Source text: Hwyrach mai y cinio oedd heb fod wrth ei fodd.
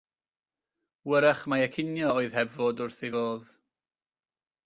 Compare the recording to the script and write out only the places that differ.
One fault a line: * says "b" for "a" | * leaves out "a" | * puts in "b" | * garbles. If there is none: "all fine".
all fine